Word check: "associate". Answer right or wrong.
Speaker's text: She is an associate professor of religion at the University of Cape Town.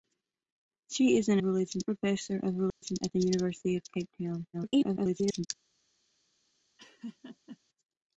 wrong